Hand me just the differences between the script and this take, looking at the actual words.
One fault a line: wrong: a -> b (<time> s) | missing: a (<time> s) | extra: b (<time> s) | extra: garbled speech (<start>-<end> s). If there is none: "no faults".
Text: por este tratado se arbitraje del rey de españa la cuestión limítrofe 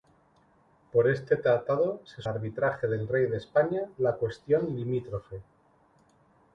no faults